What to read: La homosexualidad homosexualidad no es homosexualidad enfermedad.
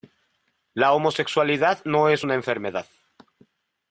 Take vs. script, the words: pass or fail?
fail